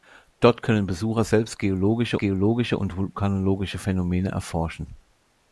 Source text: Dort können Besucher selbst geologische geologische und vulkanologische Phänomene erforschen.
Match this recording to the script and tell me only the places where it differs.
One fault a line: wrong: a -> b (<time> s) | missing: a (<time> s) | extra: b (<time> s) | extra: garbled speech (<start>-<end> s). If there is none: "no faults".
no faults